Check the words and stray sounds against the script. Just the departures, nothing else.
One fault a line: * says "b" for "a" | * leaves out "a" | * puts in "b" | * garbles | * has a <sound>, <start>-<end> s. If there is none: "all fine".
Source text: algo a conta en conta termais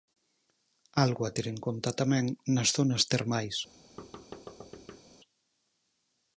* says "ter" for "conta"
* puts in "tamén nas zonas"
* has a thud, 4.0-5.0 s